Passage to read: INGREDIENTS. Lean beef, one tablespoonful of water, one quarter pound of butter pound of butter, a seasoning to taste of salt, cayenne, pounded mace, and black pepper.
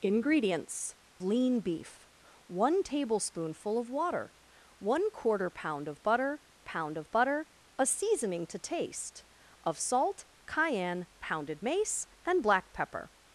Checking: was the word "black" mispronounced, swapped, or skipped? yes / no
no